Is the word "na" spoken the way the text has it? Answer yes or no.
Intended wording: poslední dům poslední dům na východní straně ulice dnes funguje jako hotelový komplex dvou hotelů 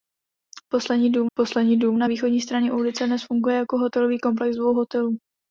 yes